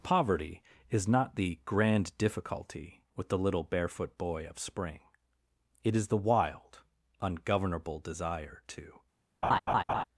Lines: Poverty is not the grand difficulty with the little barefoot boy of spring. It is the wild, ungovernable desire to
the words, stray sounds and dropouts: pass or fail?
fail